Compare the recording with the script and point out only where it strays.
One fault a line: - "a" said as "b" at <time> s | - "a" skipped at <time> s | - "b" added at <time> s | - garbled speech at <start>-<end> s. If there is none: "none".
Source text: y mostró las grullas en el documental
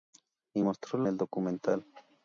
- "las grullas en" skipped at 1.0 s